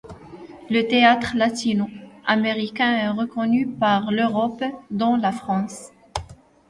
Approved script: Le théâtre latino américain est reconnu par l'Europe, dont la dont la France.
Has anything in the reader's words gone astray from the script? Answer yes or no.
yes